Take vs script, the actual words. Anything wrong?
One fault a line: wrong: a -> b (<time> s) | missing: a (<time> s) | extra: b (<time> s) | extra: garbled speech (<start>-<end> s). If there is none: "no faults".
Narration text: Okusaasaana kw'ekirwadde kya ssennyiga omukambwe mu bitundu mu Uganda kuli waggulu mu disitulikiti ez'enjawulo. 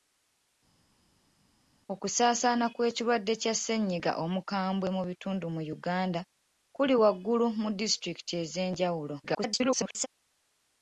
extra: garbled speech (9.2-10.1 s)